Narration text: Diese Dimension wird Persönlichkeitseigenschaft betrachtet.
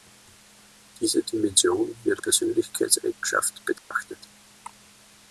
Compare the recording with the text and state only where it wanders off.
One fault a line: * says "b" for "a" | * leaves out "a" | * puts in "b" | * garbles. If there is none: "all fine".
all fine